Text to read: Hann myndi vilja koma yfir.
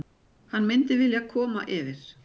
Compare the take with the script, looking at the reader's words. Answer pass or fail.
pass